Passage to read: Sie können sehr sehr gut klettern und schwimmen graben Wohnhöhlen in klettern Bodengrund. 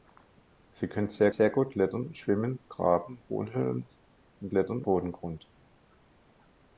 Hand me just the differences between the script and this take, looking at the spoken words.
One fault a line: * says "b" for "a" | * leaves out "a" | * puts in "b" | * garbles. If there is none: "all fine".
all fine